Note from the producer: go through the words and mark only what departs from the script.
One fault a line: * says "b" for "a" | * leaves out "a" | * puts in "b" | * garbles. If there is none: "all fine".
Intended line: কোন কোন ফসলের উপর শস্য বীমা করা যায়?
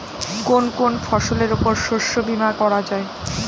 all fine